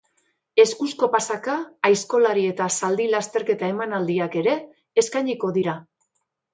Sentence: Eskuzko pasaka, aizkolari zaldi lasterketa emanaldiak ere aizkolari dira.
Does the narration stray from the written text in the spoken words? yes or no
yes